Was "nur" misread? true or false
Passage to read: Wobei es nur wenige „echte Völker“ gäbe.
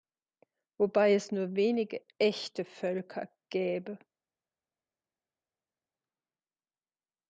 false